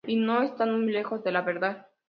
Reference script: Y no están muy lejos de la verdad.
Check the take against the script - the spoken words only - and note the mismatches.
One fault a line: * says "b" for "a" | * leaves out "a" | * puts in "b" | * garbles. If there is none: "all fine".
all fine